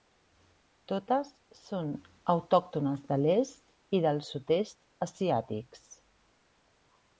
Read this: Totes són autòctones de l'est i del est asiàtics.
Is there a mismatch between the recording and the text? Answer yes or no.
yes